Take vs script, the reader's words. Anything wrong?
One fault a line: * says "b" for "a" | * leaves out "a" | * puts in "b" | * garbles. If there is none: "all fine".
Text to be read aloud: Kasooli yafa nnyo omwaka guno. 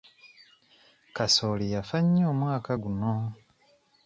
all fine